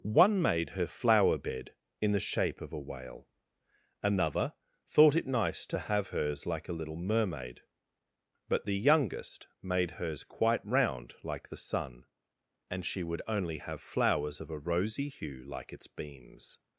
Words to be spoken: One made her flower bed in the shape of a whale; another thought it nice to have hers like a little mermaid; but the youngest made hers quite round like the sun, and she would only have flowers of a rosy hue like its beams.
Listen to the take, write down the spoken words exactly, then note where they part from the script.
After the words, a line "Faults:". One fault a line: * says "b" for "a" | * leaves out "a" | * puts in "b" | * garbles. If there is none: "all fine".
One made her flower bed in the shape of a whale; another thought it nice to have hers like a little mermaid; but the youngest made hers quite round like the sun, and she would only have flowers of a rosy hue like its beams.
Faults:
all fine